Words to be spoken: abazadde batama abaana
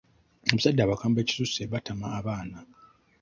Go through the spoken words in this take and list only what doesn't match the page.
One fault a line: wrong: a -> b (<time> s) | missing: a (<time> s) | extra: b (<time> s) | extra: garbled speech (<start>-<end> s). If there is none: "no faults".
extra: abakambwe ekisusse (0.8 s)